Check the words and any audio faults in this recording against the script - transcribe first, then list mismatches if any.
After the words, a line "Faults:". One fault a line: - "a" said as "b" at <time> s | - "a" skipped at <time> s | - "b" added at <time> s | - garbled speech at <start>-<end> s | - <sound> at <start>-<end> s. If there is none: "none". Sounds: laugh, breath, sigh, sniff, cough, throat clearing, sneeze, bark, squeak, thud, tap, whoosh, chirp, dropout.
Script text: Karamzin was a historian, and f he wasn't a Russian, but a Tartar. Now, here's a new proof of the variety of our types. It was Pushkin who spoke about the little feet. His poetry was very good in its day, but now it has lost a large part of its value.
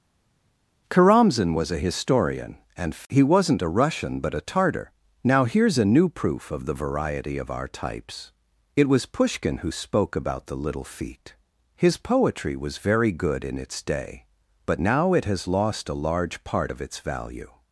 Karamzin was a historian, and he wasn't a Russian, but a Tartar. Now, here's a new proof of the variety of our types. It was Pushkin who spoke about the little feet. His poetry was very good in its day, but now it has lost a large part of its value.
Faults:
- "f" skipped at 2.9 s